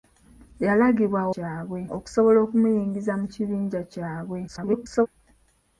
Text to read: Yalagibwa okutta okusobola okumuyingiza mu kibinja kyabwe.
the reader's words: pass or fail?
fail